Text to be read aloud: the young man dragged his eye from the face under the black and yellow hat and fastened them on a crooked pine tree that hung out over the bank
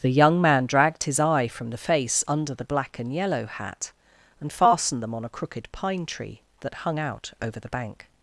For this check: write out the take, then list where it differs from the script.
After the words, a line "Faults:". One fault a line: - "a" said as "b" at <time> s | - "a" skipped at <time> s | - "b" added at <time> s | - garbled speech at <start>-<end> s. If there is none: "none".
the young man dragged his eye from the face under the black and yellow hat and fastened them on a crooked pine tree that hung out over the bank
Faults:
none